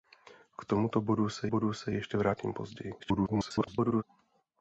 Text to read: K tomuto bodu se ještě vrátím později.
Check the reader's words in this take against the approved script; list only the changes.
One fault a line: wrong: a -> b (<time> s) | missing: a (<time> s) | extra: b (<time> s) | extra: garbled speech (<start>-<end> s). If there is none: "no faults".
extra: bodu se (1.5 s)
extra: garbled speech (3.0-4.0 s)